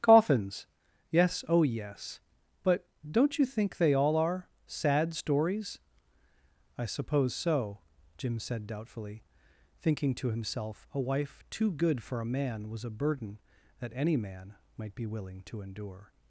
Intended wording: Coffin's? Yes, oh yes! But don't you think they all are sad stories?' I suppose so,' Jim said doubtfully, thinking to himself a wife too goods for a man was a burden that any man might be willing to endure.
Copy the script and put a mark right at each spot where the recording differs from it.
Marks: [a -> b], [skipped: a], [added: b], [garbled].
Coffin's? Yes, oh yes! But don't you think they all are sad stories?' I suppose so,' Jim said doubtfully, thinking to himself a wife too [goods -> good] for a man was a burden that any man might be willing to endure.